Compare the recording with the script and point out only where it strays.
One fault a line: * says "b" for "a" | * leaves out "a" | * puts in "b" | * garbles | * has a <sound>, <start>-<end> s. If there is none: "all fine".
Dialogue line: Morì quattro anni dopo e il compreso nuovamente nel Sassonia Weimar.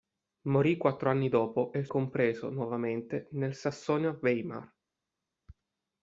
all fine